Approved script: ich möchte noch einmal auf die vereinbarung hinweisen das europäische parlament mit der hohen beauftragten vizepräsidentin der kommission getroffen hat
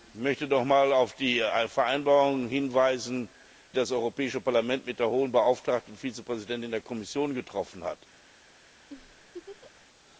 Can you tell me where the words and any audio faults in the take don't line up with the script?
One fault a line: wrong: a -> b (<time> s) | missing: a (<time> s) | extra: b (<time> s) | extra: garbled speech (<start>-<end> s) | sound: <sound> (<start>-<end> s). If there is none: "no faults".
sound: laugh (8.9-9.9 s)